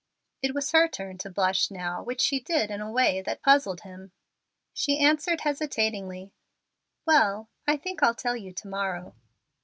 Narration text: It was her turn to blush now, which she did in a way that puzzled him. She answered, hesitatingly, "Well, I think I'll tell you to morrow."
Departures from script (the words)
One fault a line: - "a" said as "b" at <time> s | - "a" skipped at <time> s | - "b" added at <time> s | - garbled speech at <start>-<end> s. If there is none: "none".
none